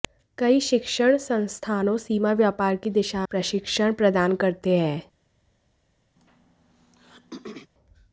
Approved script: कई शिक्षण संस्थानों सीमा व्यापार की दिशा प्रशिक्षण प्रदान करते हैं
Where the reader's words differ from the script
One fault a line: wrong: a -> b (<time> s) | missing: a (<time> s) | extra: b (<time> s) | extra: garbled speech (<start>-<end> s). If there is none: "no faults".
no faults